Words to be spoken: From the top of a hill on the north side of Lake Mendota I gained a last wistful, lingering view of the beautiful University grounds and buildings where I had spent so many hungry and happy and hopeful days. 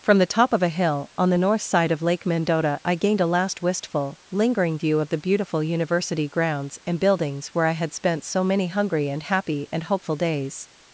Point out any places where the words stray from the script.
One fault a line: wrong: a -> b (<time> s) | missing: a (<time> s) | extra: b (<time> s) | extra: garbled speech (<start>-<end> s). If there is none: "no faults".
no faults